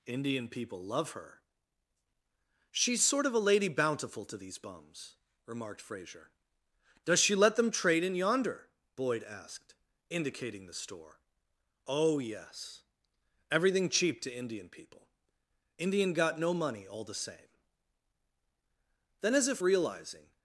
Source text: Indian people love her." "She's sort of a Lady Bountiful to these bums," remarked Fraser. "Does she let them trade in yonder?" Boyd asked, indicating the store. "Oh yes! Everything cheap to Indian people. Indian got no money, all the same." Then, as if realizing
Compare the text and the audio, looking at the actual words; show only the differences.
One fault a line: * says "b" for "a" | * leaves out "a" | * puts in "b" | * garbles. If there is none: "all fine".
all fine